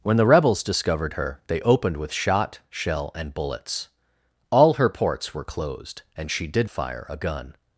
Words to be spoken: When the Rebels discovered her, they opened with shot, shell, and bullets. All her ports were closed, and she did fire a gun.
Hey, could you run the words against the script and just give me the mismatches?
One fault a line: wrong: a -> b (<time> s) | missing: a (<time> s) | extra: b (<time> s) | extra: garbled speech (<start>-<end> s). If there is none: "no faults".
no faults